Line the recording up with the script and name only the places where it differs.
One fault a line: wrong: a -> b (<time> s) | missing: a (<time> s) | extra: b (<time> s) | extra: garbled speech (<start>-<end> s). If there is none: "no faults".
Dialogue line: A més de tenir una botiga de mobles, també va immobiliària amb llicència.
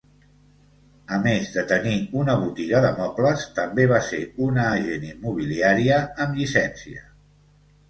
extra: ser una agent (4.1 s)